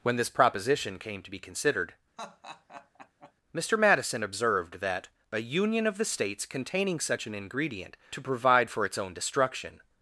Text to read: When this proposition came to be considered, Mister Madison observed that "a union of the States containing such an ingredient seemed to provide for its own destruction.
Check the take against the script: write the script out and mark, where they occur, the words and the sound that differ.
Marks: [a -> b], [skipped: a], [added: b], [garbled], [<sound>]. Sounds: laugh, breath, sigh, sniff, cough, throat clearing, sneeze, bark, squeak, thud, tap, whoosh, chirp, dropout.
When this proposition came to be considered, [laugh] Mister Madison observed that "a union of the States containing such an ingredient [skipped: seemed] to provide for its own destruction.